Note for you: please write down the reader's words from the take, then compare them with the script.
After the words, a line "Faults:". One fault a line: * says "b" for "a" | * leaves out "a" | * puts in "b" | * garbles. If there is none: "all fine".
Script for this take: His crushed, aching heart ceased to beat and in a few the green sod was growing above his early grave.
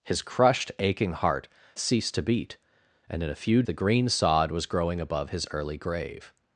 His crushed, aching heart ceased to beat and in a few the green sod was growing above his early grave.
Faults:
all fine